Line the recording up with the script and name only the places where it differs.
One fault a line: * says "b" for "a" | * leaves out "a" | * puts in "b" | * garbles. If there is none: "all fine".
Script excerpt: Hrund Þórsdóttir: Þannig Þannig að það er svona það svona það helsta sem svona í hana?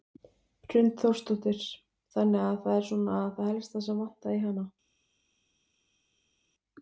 * leaves out "Þannig"
* leaves out "svona það"
* says "vantaði" for "svona"